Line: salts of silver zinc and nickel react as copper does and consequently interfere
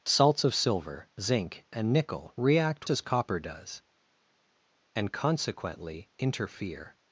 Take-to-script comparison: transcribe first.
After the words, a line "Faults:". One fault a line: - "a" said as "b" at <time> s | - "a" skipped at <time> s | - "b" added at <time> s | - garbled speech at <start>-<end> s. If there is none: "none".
salts of silver zinc and nickel react as copper does and consequently interfere
Faults:
none